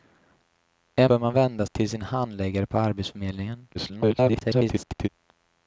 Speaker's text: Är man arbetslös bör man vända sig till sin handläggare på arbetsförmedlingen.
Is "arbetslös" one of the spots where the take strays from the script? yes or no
yes